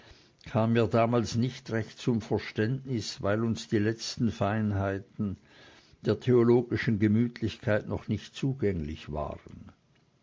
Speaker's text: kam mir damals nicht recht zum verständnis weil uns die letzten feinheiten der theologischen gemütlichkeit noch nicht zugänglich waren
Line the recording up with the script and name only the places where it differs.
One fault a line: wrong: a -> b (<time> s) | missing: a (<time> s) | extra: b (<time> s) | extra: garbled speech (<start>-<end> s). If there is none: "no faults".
no faults